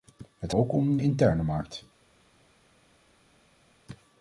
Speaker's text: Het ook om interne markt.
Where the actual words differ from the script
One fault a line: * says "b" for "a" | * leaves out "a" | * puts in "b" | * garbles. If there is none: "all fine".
all fine